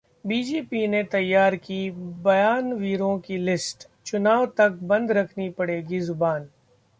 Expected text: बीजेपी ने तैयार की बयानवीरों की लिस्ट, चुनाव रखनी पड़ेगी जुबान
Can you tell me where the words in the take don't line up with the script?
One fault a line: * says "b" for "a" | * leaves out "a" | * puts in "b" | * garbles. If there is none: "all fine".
* puts in "तक बंद"